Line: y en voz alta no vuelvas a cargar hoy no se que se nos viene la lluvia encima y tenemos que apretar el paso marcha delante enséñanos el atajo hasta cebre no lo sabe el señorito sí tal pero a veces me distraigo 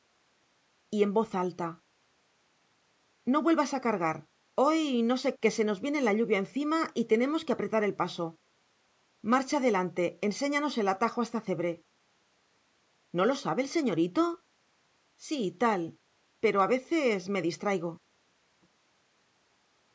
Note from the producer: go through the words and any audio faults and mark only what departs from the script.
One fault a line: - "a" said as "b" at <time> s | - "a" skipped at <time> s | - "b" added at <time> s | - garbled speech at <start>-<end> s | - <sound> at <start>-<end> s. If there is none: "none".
none